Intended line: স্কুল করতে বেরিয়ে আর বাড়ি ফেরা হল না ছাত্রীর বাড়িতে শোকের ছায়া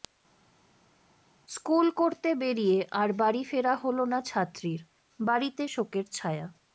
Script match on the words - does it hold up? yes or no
yes